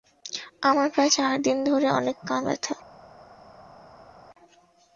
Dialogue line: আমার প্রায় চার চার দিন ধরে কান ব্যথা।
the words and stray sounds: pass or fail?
fail